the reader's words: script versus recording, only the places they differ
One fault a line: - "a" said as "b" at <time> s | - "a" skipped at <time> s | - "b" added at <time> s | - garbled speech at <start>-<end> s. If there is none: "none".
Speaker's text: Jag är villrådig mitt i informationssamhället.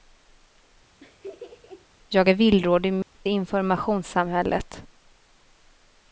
none